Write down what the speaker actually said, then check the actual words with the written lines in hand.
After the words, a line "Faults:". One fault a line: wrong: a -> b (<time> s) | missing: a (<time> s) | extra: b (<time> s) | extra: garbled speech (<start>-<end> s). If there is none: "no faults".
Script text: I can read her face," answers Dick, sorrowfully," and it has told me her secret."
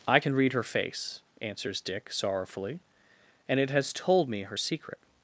I can read her face," answers Dick, sorrowfully," and it has told me her secret."
Faults:
no faults